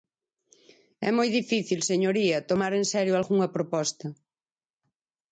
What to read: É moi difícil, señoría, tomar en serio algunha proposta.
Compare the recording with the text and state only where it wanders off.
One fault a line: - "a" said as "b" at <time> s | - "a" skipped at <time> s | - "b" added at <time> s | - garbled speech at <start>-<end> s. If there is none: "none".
none